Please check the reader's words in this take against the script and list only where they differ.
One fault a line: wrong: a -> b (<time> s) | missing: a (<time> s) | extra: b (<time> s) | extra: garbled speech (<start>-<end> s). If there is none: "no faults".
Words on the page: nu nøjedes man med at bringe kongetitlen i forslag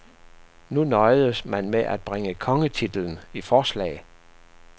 no faults